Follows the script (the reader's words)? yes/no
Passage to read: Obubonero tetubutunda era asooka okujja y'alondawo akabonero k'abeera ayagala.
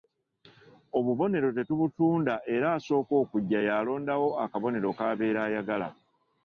yes